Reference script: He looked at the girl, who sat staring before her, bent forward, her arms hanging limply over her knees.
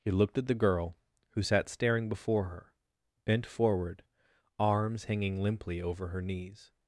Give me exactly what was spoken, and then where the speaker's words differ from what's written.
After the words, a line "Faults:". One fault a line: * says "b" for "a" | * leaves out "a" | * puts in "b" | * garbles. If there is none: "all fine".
He looked at the girl, who sat staring before her, bent forward, arms hanging limply over her knees.
Faults:
* leaves out "her"